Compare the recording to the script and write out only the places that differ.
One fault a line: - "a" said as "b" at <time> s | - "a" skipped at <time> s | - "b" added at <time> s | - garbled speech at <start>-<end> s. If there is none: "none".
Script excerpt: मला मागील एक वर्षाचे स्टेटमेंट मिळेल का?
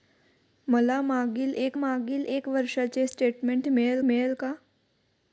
- "मागील एक" added at 1.7 s
- "मिळेल" added at 4.0 s